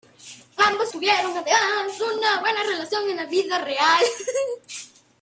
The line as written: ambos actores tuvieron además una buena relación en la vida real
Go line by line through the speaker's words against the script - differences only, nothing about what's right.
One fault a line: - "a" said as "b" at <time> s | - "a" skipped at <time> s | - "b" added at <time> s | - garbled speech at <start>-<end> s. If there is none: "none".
- "actores" skipped at 0.9 s